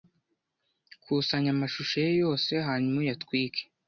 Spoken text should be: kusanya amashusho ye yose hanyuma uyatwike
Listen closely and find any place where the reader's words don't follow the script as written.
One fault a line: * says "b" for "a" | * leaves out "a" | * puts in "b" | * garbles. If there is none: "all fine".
all fine